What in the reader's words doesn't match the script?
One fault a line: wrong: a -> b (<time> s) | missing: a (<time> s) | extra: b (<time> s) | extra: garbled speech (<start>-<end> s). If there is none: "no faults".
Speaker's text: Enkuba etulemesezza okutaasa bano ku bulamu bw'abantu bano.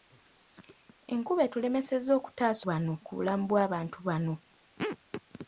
no faults